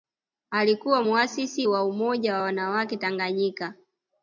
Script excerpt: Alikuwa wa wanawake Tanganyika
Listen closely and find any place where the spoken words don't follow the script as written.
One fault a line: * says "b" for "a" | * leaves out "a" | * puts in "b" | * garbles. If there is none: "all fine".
* puts in "muasisi wa Umoja"